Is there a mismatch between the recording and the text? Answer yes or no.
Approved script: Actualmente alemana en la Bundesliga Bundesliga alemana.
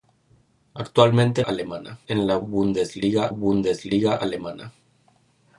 no